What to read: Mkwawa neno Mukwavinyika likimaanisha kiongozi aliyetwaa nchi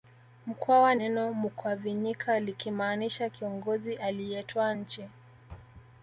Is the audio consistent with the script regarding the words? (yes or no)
yes